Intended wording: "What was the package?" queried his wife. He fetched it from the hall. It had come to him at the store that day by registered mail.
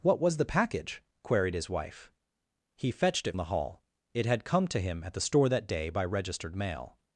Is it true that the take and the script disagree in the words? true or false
true